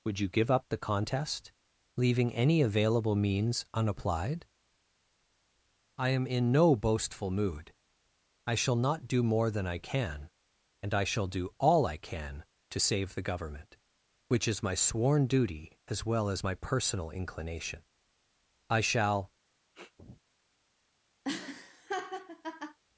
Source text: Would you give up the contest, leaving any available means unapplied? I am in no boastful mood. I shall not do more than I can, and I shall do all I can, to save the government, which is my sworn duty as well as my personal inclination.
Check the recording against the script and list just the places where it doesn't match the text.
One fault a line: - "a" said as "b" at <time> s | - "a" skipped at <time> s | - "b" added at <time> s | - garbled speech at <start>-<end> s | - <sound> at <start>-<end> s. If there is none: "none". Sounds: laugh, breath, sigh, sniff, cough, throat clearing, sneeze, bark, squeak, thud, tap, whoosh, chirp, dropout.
- "I shall" added at 18.7 s
- sniff at 19.7-20.2 s
- laugh at 21.2-22.8 s